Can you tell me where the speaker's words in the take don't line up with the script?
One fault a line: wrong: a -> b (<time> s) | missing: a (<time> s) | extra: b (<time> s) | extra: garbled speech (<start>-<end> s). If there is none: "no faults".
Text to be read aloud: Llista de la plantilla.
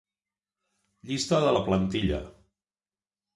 no faults